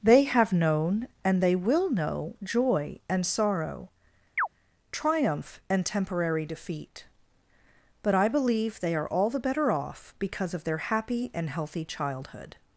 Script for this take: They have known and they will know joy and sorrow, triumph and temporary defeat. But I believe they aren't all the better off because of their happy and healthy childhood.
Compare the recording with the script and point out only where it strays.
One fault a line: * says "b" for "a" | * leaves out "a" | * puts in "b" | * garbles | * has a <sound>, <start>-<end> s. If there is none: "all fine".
* has a chirp, 4.4-4.5 s
* says "are" for "aren't"